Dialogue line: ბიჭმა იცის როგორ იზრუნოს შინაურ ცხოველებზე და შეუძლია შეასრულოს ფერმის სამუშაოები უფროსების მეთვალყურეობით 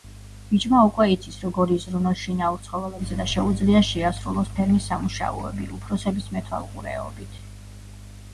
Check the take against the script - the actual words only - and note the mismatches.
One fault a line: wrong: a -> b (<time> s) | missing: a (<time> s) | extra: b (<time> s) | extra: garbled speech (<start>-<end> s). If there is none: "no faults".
extra: უკვე (0.8 s)